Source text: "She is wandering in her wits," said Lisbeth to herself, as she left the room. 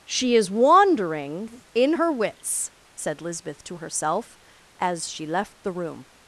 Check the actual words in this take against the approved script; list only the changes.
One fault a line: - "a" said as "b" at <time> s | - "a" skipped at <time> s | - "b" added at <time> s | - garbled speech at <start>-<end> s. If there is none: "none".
none